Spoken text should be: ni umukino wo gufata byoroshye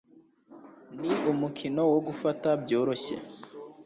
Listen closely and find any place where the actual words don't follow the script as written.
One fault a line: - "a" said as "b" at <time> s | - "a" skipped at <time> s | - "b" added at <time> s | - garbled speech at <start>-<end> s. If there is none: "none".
none